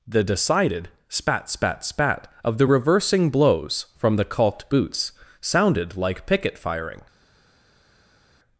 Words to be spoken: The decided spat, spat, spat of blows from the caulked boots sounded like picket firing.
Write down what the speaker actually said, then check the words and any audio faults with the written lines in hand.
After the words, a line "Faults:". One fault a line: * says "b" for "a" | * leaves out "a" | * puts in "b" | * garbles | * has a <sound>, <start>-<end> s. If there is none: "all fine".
The decided spat, spat, spat of the reversing blows from the caulked boots sounded like picket firing.
Faults:
* puts in "the reversing"